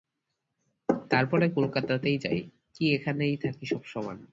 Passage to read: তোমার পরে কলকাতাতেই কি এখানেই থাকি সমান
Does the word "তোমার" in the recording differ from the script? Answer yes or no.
yes